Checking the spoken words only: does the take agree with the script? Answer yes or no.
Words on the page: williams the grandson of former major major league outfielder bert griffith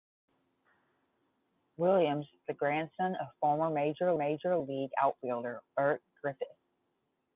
yes